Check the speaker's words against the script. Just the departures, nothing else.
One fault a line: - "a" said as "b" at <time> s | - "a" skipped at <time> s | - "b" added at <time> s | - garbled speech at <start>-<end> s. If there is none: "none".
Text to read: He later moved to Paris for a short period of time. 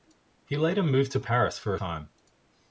- "short period of" skipped at 1.8 s